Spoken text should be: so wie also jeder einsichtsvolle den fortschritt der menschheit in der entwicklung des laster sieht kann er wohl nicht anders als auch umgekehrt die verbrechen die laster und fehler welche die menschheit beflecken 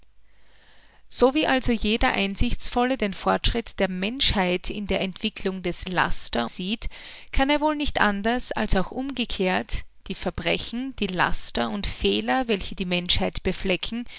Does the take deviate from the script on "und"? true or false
false